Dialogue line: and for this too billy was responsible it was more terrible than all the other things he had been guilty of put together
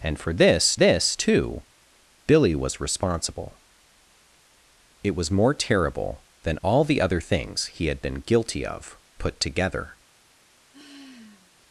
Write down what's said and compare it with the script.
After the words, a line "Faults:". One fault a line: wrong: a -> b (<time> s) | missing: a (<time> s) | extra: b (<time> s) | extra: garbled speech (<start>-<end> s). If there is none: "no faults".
and for this this too billy was responsible it was more terrible than all the other things he had been guilty of put together
Faults:
extra: this (0.7 s)